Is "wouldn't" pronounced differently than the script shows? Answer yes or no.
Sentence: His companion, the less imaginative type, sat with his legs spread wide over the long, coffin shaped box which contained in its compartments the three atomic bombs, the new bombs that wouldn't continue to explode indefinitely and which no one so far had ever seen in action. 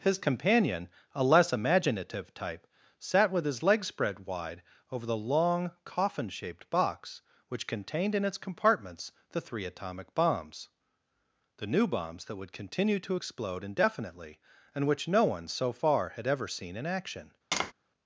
yes